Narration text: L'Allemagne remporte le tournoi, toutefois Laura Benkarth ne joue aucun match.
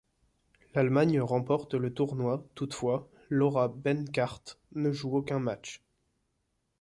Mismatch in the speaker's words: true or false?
false